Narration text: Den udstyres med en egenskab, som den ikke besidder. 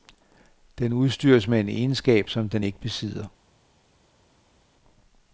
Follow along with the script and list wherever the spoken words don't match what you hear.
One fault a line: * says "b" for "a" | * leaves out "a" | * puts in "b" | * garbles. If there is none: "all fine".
all fine